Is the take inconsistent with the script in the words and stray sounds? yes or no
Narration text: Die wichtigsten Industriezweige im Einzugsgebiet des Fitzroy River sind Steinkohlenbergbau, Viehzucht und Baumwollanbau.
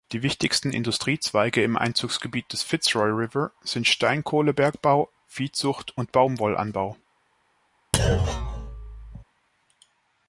yes